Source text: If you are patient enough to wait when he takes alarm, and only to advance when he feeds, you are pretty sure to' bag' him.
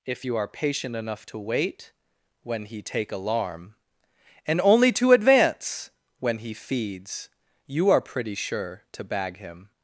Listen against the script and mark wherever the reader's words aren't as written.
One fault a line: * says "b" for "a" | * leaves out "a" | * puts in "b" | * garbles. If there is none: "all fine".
* says "take" for "takes"